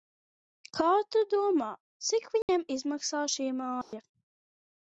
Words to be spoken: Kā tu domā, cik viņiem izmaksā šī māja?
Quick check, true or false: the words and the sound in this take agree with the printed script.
false